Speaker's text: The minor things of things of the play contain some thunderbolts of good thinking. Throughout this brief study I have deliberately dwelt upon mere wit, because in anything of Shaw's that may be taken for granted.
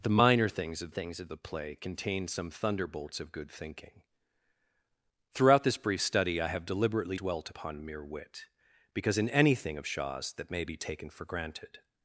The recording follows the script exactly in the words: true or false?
true